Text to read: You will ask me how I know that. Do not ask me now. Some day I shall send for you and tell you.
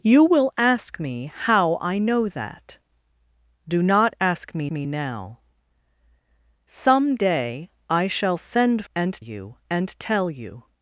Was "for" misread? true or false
true